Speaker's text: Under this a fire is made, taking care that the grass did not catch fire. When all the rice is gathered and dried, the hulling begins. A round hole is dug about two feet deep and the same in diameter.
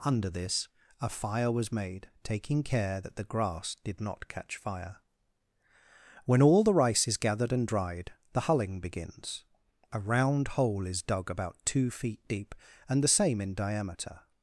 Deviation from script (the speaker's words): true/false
true